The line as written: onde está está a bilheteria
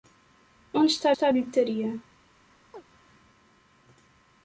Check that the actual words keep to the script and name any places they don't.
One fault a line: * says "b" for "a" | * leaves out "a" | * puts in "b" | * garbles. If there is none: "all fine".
all fine